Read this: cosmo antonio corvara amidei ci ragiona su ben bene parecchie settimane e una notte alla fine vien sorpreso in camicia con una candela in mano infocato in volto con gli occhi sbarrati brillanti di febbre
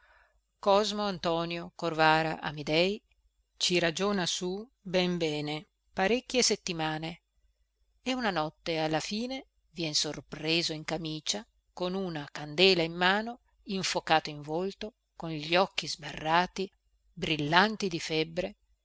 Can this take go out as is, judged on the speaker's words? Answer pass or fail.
pass